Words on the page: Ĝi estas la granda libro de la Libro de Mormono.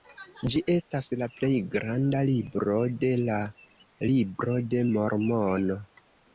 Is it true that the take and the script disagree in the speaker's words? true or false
true